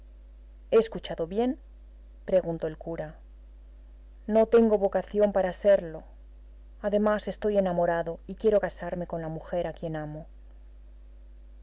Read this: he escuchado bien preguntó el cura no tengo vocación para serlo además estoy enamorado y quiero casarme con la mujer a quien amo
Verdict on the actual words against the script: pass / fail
pass